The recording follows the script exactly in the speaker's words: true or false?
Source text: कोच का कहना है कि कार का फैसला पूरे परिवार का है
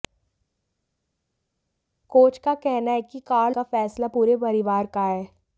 true